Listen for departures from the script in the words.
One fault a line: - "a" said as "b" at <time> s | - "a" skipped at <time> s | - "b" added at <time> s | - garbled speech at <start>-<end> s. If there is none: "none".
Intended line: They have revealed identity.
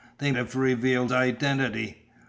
none